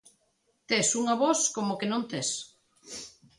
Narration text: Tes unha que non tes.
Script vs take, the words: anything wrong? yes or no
yes